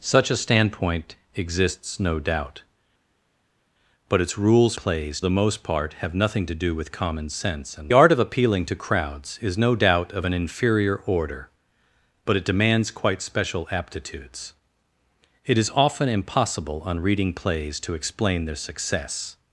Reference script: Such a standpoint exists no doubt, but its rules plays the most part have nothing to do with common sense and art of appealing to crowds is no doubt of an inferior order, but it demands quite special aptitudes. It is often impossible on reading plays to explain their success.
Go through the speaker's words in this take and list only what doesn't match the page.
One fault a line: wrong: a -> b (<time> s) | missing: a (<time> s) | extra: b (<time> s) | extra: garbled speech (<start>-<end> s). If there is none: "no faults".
no faults